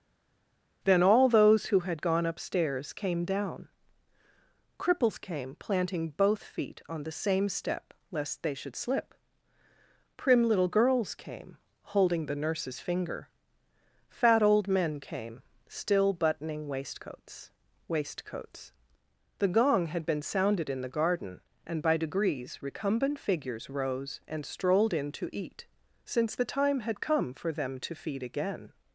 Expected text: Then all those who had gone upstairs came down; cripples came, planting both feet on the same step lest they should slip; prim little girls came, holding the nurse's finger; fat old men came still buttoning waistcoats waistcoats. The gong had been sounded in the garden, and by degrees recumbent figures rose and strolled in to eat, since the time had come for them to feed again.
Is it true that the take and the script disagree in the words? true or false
false